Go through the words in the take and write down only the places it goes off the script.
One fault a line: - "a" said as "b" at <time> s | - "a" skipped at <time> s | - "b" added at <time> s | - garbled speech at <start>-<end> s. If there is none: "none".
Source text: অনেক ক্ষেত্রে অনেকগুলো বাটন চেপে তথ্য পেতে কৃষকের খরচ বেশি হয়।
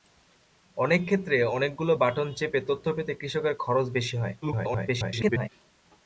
- garbled speech at 4.4-5.5 s